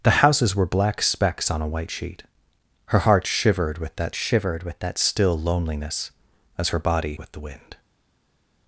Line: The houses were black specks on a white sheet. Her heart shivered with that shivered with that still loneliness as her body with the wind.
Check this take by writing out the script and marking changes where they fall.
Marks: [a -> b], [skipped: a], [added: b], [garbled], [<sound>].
The houses were black specks on a white sheet. Her heart shivered with that shivered with that still loneliness as her body with the wind.